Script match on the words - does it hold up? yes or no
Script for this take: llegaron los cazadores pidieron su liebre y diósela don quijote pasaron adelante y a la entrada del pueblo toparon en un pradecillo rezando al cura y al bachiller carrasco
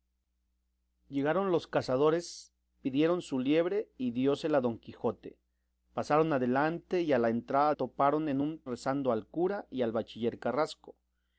no